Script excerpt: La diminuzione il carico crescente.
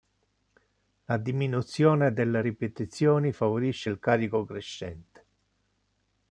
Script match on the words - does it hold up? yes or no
no